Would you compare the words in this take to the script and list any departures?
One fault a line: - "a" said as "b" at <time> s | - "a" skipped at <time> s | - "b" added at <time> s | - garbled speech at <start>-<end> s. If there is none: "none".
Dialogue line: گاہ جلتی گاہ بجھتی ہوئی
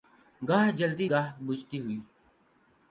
none